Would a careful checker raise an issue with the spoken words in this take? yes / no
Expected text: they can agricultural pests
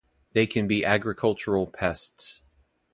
yes